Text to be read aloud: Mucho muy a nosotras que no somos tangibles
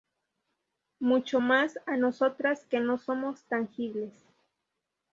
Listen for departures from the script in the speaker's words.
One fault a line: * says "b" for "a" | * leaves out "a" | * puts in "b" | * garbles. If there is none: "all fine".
* says "más" for "muy"